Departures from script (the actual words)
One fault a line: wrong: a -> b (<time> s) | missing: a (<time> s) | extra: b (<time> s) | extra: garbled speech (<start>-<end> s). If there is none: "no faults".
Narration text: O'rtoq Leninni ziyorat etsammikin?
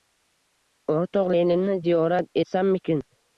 no faults